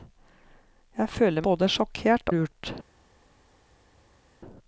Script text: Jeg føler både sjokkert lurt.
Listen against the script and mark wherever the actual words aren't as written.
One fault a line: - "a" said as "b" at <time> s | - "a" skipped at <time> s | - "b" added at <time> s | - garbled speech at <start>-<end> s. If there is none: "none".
none